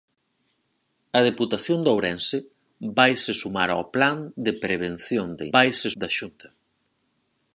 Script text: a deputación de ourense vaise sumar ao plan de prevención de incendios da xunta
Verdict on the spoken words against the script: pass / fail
fail